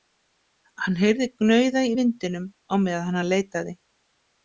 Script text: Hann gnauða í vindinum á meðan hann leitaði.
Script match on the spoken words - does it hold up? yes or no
no